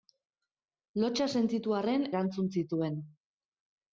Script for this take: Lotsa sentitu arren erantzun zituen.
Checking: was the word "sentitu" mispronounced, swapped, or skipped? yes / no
no